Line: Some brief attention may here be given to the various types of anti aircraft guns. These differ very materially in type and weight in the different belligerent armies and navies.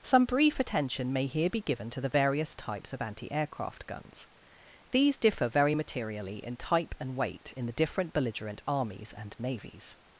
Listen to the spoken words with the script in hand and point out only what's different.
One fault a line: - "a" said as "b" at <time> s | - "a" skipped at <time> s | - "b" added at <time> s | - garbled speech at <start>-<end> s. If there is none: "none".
none